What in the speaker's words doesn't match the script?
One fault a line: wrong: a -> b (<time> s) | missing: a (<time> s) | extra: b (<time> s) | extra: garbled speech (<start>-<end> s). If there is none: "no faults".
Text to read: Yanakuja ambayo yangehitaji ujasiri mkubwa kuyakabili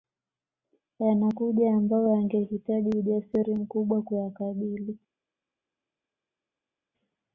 no faults